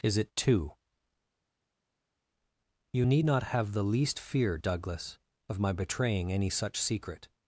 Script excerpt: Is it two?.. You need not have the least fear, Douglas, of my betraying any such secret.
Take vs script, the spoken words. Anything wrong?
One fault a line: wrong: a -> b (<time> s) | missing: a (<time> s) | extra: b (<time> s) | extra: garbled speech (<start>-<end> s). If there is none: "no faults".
no faults